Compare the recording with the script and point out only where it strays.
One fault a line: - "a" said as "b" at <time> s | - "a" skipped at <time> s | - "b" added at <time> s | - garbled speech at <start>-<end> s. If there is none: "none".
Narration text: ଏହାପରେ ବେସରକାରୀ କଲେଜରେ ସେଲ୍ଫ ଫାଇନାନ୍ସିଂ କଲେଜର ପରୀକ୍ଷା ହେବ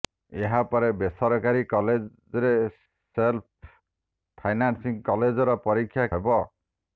none